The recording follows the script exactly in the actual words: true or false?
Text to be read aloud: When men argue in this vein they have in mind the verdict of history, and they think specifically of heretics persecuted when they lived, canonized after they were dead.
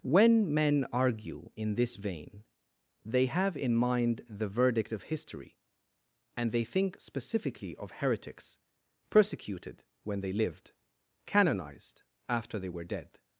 true